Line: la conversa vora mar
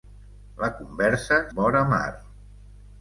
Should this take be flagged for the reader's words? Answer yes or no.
no